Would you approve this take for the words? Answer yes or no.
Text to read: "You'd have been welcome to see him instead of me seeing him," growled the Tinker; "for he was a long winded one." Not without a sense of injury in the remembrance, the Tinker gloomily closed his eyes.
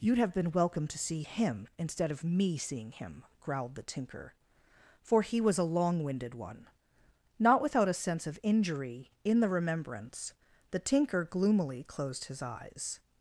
yes